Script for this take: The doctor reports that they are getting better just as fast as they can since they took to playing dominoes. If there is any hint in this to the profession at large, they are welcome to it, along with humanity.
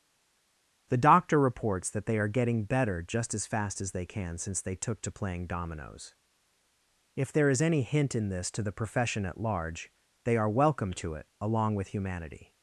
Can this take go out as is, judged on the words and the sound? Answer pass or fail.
pass